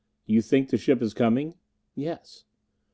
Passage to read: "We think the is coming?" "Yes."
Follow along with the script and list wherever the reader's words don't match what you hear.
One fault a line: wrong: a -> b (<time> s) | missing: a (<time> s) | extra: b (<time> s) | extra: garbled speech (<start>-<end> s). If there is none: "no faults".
wrong: We -> You (0.2 s)
extra: ship (0.8 s)